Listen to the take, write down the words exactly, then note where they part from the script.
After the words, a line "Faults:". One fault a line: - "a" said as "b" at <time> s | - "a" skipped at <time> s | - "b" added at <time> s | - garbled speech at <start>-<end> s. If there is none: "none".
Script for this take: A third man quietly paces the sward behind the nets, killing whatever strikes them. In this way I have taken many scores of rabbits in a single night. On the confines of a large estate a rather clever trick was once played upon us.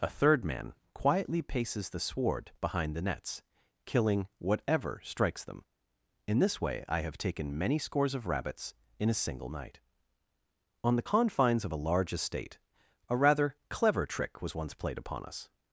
A third man quietly paces the sward behind the nets, killing whatever strikes them. In this way I have taken many scores of rabbits in a single night. On the confines of a large estate a rather clever trick was once played upon us.
Faults:
none